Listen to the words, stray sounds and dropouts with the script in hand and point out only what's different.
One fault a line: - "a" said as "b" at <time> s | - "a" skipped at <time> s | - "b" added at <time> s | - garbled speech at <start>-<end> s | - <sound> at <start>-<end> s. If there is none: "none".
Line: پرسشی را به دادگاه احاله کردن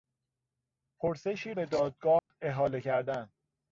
- "را" skipped at 1.5 s
- dropout at 2.2-2.3 s